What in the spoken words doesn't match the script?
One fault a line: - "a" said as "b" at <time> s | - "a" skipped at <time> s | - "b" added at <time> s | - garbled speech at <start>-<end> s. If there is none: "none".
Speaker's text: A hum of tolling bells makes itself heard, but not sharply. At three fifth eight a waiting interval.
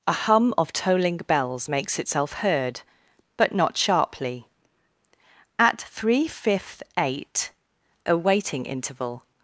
none